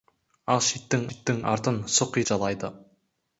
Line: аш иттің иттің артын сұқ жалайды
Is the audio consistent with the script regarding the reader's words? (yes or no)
yes